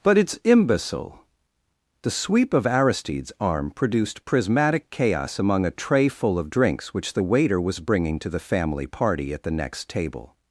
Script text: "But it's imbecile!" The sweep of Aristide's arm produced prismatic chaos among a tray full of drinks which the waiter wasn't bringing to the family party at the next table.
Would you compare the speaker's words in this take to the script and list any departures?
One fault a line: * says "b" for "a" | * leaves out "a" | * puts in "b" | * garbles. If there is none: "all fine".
* says "was" for "wasn't"